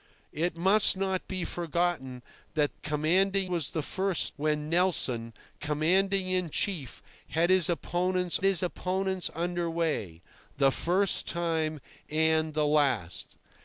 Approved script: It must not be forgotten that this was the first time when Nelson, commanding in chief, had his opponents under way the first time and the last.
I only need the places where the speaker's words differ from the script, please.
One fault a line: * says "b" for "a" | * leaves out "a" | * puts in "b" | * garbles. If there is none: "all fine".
* says "commanding" for "this"
* leaves out "time"
* puts in "his opponents"